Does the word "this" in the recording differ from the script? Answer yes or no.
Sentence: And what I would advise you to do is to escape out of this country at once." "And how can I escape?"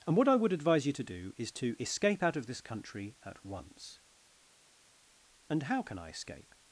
no